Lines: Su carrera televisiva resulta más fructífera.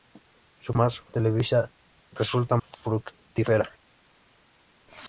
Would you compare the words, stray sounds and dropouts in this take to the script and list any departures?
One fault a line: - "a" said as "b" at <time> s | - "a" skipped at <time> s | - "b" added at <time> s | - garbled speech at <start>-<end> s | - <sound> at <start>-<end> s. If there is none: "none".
- "carrera" said as "más" at 0.7 s
- "más" skipped at 2.6 s